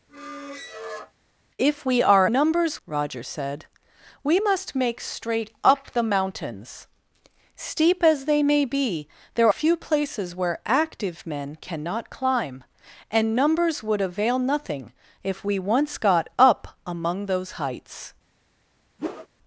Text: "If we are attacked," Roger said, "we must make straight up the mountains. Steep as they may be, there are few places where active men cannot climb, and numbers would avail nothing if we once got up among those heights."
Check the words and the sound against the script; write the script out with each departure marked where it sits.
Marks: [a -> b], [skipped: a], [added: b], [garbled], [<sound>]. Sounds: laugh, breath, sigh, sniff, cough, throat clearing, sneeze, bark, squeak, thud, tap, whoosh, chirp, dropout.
[squeak] "If we are [attacked," -> numbers] Roger said, "we must make straight up the mountains. Steep as they may be, there [skipped: are] few places where active men cannot climb, and numbers would avail nothing if we once got up among those heights." [whoosh]